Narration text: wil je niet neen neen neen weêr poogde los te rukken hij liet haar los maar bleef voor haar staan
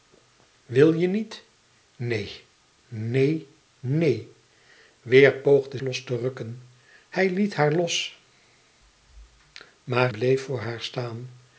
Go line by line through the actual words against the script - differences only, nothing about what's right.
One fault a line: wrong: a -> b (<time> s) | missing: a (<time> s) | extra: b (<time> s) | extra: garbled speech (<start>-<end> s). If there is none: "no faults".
no faults